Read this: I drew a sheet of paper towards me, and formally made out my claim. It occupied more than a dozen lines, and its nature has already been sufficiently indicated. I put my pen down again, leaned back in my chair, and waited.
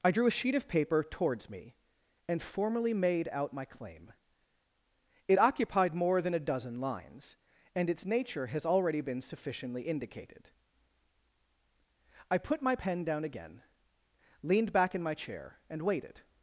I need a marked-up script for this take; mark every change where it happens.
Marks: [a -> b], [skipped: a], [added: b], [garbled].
I drew a sheet of paper towards me, and formally made out my claim. It occupied more than a dozen lines, and its nature has already been sufficiently indicated. I put my pen down again, leaned back in my chair, and waited.